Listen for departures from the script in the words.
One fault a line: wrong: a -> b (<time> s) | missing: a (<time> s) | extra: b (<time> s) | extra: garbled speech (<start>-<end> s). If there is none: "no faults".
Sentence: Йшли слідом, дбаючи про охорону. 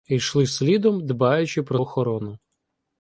no faults